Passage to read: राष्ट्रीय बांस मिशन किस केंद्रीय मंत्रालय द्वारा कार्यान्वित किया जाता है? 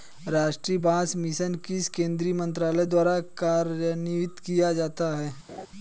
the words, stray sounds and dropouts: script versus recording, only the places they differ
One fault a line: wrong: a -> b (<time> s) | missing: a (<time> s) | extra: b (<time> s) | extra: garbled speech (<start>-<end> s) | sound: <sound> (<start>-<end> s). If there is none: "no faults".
sound: laugh (5.5-5.7 s)